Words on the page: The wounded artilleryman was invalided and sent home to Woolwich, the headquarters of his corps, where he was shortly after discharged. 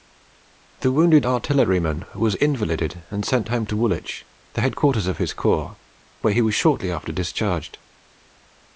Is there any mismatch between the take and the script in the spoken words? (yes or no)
no